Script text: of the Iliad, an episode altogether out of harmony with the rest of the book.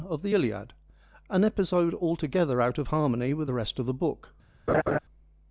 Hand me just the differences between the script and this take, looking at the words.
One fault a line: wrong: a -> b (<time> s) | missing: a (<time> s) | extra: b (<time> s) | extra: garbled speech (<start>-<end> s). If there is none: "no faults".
no faults